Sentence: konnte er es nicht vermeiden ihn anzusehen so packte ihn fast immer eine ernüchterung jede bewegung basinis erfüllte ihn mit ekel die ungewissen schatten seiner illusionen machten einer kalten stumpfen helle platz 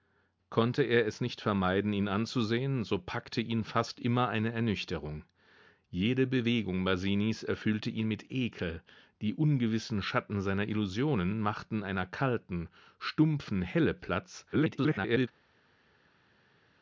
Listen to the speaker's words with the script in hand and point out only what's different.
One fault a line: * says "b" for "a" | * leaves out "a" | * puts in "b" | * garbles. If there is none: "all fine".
* garbles